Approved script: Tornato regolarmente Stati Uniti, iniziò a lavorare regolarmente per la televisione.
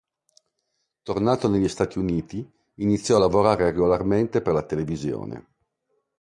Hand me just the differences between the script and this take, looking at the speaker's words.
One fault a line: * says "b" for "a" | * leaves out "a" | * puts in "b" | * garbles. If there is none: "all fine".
* says "negli" for "regolarmente"